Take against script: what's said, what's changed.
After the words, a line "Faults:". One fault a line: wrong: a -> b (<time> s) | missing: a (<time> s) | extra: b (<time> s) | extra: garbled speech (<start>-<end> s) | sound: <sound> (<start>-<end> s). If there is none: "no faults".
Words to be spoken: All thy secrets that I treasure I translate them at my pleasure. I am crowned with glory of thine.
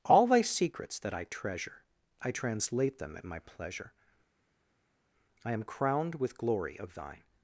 All thy secrets that I treasure I translate them at my pleasure. I am crowned with glory of thine.
Faults:
no faults